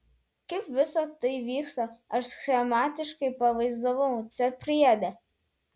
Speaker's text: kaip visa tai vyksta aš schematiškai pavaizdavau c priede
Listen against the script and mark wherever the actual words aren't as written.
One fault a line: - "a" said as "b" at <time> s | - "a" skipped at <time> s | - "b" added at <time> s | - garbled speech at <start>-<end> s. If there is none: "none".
none